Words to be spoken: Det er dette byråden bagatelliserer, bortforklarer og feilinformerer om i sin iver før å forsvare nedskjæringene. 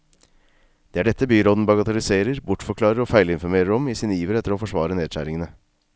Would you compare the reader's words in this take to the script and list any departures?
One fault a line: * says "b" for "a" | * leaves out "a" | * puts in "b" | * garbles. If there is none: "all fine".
* says "etter" for "før"